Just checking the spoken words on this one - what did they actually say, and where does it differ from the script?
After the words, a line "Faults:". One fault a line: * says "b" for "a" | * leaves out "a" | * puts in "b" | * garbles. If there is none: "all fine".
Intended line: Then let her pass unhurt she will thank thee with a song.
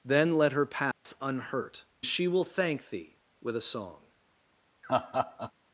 Then let her pass unhurt she will thank thee with a song.
Faults:
all fine